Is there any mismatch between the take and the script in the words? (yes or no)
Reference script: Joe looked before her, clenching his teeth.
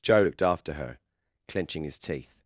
yes